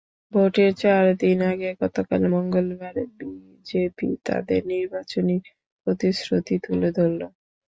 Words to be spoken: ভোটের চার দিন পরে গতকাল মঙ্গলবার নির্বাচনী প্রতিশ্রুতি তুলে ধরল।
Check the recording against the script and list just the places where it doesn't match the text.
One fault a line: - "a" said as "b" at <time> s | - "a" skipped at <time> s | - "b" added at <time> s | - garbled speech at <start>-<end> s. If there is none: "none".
- "পরে" said as "আগে" at 1.5 s
- "বিজেপি তাদের" added at 3.2 s